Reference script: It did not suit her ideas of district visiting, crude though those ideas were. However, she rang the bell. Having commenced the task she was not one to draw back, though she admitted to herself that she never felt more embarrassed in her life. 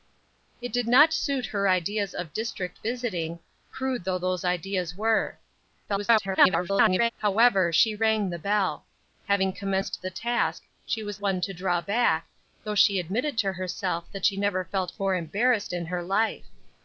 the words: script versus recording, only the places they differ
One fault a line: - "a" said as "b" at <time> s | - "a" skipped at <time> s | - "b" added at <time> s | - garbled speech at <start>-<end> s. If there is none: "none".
- garbled speech at 5.9-7.1 s
- "not" skipped at 11.2 s